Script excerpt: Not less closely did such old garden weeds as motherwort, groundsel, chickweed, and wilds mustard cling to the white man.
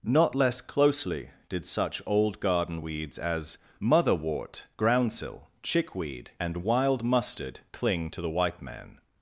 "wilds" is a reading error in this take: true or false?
true